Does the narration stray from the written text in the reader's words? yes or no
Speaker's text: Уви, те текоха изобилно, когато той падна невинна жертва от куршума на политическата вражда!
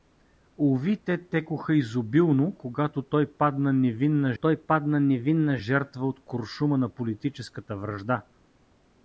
yes